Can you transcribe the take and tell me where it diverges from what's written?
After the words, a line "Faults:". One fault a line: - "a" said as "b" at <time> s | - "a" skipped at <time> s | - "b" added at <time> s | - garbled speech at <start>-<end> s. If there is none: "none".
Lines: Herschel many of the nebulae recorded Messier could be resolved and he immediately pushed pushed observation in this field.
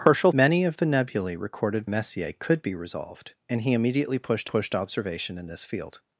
Herschel many of the nebulae recorded Messier could be resolved and he immediately pushed pushed observation in this field.
Faults:
none